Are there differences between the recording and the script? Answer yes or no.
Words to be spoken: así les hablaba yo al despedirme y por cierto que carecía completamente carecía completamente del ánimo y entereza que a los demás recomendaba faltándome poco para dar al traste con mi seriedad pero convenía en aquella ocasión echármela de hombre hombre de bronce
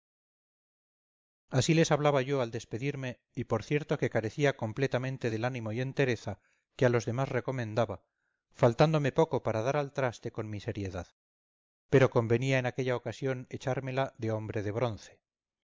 yes